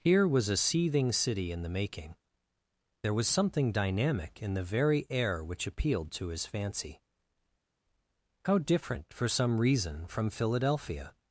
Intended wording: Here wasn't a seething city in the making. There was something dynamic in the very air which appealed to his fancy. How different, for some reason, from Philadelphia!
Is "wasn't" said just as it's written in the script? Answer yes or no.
no